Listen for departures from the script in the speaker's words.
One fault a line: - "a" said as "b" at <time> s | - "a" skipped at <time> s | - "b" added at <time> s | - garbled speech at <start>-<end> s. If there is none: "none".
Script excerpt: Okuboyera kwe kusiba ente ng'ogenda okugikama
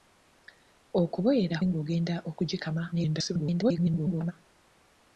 - "kwe kusiba ente" skipped at 1.6 s
- garbled speech at 2.9-4.3 s